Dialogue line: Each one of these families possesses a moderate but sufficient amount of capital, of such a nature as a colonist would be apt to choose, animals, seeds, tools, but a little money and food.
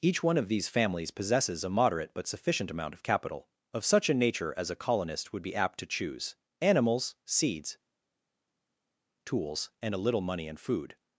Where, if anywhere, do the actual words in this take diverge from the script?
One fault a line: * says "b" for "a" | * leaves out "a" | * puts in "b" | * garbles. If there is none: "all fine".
* says "and" for "but"